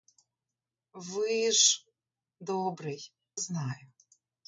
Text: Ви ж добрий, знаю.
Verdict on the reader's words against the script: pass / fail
pass